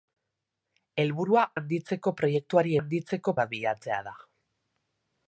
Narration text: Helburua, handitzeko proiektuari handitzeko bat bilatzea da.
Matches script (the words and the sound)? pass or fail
pass